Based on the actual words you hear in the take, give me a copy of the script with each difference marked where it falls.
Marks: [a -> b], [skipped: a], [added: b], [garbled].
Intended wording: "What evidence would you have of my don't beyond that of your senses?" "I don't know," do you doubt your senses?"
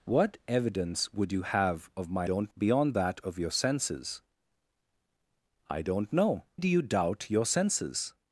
"What evidence would you have of my don't beyond that of your senses?" "I don't know," do you doubt your senses?"